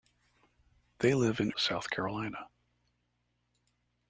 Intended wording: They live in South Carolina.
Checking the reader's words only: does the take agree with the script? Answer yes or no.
yes